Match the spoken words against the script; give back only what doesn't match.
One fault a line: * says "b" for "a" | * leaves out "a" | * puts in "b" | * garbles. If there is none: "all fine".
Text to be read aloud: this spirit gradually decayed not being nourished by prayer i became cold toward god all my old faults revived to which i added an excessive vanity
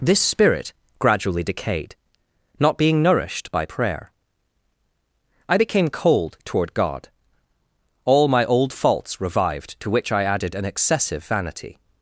all fine